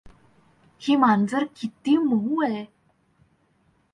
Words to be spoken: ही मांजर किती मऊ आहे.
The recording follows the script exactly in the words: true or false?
true